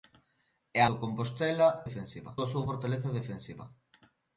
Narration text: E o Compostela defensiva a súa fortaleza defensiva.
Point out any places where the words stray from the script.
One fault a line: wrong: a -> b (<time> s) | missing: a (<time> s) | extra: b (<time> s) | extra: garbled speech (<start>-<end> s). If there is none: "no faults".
no faults